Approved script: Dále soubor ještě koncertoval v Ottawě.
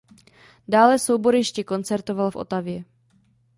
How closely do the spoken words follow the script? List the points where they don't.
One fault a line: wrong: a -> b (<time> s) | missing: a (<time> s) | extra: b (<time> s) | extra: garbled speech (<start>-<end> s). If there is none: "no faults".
no faults